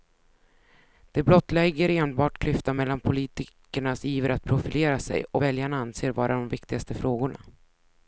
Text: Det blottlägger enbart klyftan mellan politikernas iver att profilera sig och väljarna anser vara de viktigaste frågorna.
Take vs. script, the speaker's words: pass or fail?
pass